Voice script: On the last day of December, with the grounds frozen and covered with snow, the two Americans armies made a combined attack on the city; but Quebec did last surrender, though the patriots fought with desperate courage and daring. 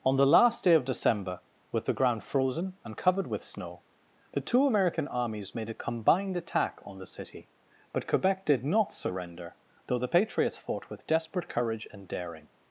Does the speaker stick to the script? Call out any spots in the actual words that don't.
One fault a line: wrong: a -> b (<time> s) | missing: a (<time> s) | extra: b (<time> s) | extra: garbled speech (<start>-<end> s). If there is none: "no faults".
wrong: grounds -> ground (1.9 s)
wrong: Americans -> American (4.7 s)
wrong: last -> not (8.7 s)